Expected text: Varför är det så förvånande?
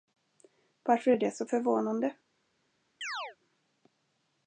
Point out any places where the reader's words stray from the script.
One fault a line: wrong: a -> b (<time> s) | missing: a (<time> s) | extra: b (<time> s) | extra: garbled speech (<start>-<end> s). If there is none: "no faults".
no faults